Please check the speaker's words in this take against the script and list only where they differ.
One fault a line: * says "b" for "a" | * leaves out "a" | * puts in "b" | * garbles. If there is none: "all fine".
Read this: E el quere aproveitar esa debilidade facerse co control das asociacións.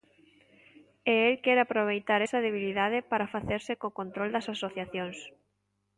* puts in "para"